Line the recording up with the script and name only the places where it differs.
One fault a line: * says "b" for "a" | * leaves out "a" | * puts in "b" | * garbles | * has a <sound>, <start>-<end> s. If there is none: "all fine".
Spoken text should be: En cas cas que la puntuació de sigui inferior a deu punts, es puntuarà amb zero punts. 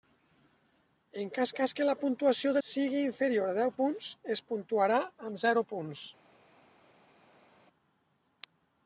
all fine